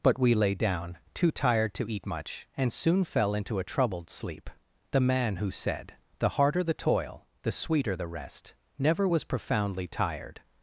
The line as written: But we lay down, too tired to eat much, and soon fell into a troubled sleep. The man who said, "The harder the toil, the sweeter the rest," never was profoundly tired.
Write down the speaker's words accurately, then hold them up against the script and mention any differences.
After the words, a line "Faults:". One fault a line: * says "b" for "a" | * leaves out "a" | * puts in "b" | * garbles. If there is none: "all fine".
But we lay down, too tired to eat much, and soon fell into a troubled sleep. The man who said, "The harder the toil, the sweeter the rest," never was profoundly tired.
Faults:
all fine